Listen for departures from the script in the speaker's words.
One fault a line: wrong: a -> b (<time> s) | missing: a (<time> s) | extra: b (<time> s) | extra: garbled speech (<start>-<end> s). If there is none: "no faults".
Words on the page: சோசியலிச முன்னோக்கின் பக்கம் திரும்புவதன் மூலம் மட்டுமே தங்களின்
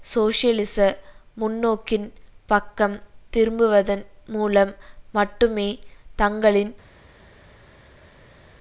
no faults